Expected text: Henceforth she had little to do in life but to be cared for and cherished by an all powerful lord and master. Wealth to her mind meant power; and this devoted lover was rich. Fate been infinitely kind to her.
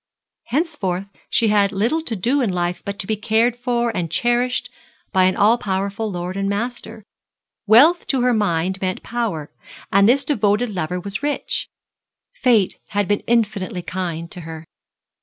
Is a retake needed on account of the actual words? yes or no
yes